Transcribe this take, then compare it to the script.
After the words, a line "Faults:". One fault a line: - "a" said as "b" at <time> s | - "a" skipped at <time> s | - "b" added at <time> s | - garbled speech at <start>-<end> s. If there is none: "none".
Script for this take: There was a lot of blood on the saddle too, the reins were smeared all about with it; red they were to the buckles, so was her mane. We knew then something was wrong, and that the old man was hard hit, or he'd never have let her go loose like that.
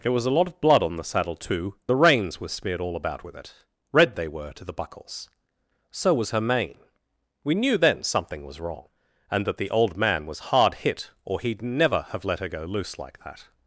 There was a lot of blood on the saddle too, the reins were smeared all about with it; red they were to the buckles, so was her mane. We knew then something was wrong, and that the old man was hard hit, or he'd never have let her go loose like that.
Faults:
none